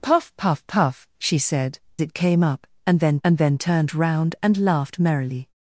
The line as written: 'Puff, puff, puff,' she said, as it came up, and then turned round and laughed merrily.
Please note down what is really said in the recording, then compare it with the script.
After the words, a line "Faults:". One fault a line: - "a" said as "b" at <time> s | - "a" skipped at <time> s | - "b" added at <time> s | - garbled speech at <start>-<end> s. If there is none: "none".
'Puff, puff, puff,' she said, it came up, and then and then turned round and laughed merrily.
Faults:
- "as" skipped at 1.8 s
- "and then" added at 3.2 s